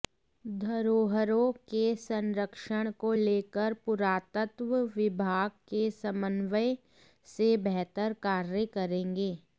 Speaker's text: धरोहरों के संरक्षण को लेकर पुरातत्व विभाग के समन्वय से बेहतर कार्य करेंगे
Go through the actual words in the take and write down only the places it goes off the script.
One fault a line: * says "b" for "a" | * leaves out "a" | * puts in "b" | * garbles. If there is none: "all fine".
all fine